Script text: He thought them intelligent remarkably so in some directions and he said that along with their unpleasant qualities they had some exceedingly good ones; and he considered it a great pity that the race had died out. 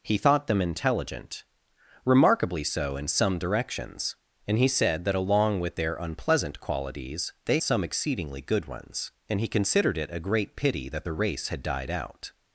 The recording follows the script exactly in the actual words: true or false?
false